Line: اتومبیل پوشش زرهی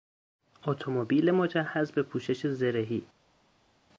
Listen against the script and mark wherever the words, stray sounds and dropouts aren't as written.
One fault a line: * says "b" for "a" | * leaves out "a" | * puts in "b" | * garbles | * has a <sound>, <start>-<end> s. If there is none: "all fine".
* puts in "مجهز به"